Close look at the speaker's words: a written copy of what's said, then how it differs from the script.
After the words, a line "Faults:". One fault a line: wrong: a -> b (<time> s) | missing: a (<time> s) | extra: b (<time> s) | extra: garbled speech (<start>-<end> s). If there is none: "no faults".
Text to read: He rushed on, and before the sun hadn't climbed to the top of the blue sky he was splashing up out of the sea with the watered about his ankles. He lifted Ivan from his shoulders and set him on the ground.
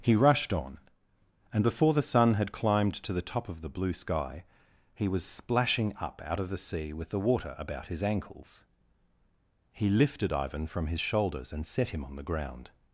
He rushed on, and before the sun had climbed to the top of the blue sky he was splashing up out of the sea with the water about his ankles. He lifted Ivan from his shoulders and set him on the ground.
Faults:
wrong: hadn't -> had (2.4 s)
wrong: watered -> water (7.2 s)